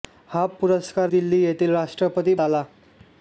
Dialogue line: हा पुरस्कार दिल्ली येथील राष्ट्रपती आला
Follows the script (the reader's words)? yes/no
yes